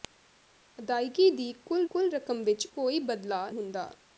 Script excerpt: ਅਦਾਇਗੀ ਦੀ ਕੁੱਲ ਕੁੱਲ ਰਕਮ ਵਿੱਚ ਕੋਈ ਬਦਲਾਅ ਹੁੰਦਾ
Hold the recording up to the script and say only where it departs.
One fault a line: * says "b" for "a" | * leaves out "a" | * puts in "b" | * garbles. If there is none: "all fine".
all fine